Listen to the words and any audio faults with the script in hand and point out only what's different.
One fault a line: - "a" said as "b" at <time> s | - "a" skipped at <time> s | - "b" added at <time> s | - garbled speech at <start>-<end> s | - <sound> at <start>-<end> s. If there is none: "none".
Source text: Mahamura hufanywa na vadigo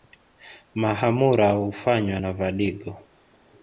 none